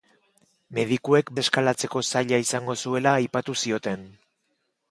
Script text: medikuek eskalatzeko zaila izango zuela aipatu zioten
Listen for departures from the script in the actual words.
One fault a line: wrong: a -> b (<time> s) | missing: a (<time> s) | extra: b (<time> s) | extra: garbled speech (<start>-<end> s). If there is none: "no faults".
no faults